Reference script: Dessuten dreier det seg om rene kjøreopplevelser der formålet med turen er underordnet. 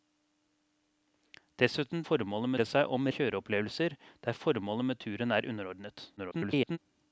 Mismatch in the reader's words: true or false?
true